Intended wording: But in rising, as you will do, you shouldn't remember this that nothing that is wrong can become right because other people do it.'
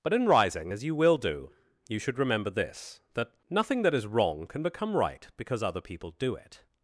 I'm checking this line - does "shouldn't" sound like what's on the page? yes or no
no